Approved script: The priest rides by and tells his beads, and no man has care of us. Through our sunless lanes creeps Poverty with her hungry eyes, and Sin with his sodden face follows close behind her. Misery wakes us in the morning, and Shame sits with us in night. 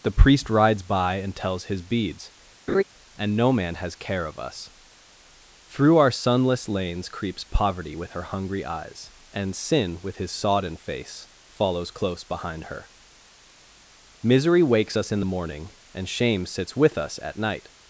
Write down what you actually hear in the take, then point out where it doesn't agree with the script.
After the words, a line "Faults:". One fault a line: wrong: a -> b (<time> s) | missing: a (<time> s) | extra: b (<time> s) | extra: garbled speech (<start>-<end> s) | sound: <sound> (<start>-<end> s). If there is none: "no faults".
The priest rides by and tells his beads, and no man has care of us. Through our sunless lanes creeps Poverty with her hungry eyes, and Sin with his sodden face follows close behind her. Misery wakes us in the morning, and Shame sits with us at night.
Faults:
sound: laugh (2.7-2.8 s)
wrong: in -> at (17.2 s)